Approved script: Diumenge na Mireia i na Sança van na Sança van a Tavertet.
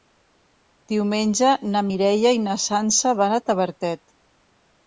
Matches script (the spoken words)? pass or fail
fail